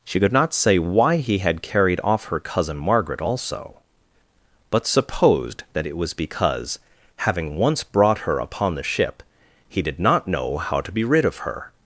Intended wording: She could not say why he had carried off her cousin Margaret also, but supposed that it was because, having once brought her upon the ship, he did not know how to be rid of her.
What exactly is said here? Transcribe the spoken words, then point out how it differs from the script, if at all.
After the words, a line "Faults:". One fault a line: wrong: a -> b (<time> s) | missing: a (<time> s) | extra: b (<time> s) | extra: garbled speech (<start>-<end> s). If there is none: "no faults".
She could not say why he had carried off her cousin Margaret also, but supposed that it was because, having once brought her upon the ship, he did not know how to be rid of her.
Faults:
no faults